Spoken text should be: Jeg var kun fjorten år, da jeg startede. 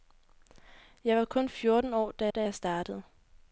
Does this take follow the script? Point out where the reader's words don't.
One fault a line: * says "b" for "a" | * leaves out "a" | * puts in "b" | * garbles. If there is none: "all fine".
* puts in "da"